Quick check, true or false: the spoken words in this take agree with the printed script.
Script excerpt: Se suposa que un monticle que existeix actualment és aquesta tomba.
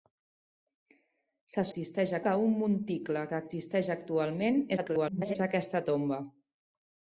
false